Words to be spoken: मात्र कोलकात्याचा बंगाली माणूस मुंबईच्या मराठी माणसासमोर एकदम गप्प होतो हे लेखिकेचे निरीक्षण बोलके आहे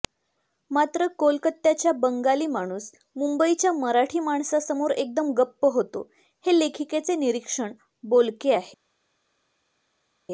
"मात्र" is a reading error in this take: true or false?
false